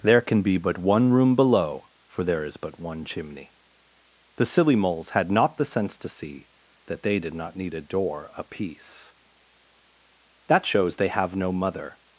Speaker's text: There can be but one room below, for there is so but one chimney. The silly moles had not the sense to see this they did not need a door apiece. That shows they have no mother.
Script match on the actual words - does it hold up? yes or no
no